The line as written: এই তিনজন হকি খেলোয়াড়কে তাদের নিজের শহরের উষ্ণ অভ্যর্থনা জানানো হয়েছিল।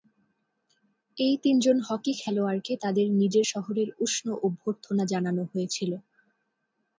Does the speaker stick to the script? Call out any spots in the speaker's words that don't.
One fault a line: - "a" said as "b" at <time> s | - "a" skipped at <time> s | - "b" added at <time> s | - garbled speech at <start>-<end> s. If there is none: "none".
none